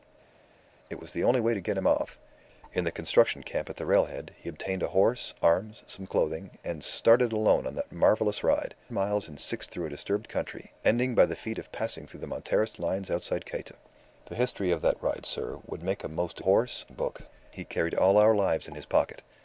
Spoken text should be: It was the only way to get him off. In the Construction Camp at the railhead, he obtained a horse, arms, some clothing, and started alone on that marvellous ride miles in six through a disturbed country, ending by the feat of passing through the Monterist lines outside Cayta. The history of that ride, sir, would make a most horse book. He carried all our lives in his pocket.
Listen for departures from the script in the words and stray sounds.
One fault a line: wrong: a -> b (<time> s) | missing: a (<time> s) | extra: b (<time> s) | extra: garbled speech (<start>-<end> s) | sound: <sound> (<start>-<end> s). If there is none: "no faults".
no faults